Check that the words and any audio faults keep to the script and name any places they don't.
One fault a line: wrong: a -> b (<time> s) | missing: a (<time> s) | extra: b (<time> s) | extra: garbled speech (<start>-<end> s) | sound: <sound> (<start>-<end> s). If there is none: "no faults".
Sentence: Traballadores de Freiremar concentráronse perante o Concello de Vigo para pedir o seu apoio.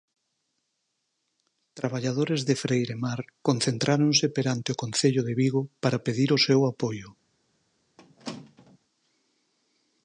sound: squeak (8.0-8.8 s)